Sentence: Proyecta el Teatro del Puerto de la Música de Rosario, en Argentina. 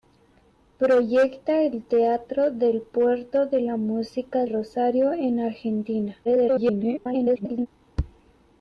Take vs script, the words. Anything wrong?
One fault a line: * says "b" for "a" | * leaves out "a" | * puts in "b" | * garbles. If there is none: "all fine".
* leaves out "de"
* garbles